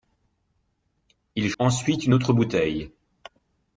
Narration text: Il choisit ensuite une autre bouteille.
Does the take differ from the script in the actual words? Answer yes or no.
yes